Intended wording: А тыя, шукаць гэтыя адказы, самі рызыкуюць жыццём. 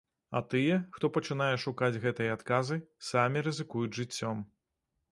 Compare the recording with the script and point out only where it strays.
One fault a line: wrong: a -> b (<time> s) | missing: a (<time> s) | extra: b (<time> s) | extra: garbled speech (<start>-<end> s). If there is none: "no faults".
extra: хто пачынае (1.0 s)